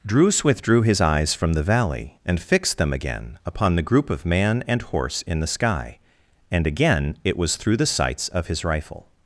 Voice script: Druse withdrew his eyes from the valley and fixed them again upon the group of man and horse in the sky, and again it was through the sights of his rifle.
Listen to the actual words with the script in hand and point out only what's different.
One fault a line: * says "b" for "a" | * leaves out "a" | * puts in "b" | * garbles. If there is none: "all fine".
all fine